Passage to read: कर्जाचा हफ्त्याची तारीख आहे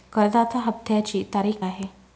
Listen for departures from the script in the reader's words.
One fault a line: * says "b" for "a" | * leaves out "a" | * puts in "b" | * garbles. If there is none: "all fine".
all fine